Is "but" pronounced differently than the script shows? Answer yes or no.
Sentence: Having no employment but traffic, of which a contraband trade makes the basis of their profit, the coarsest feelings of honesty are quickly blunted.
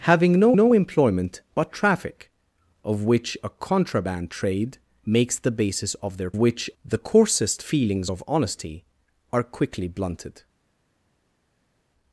no